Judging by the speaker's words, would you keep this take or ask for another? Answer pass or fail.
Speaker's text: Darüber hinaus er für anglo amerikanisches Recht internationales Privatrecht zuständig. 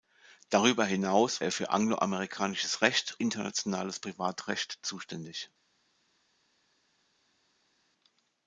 pass